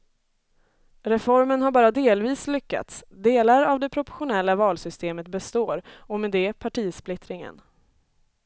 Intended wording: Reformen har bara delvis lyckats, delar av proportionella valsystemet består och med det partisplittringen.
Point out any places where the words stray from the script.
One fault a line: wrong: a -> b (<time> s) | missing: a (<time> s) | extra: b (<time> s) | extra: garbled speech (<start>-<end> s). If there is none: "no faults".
extra: det (3.8 s)